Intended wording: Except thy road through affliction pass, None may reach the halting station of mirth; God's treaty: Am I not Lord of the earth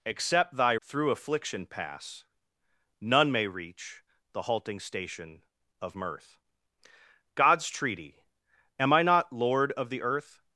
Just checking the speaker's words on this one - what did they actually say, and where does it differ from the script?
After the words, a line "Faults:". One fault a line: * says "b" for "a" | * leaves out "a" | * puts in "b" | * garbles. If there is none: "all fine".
Except thy through affliction pass, None may reach the halting station of mirth; God's treaty: Am I not Lord of the earth
Faults:
* leaves out "road"